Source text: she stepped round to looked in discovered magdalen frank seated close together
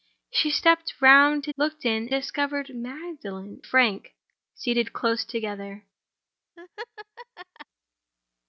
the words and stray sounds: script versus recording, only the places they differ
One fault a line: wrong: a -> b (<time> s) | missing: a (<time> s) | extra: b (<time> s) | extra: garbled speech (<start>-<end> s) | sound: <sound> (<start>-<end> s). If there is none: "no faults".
sound: laugh (6.6-7.7 s)